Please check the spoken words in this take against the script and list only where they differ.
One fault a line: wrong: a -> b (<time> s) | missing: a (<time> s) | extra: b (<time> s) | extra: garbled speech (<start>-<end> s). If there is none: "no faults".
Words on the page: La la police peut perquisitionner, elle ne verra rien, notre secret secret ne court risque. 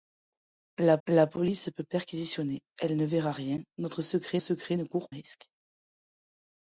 no faults